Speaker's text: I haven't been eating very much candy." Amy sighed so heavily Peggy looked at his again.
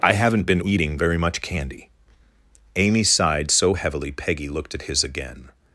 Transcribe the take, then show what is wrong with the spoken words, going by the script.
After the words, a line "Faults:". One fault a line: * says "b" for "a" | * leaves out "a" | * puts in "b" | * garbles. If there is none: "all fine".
I haven't been eating very much candy." Amy sighed so heavily Peggy looked at his again.
Faults:
all fine